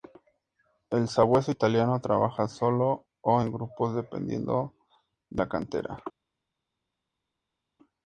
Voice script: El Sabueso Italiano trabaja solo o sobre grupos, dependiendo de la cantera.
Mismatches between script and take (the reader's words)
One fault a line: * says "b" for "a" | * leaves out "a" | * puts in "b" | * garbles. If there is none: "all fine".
* says "en" for "sobre"